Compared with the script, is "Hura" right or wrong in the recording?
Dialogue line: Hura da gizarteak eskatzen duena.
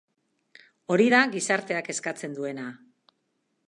wrong